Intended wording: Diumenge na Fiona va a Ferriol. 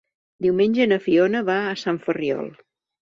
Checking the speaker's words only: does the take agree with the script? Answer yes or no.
no